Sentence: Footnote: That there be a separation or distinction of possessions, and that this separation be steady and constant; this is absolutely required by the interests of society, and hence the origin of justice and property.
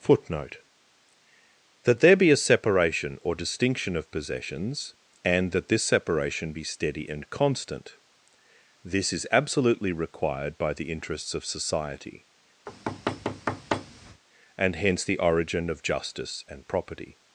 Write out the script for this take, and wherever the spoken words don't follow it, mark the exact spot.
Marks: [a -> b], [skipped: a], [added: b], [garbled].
Footnote: That there be a separation or distinction of possessions, and that this separation be steady and constant; this is absolutely required by the interests of society, and hence the origin of justice and property.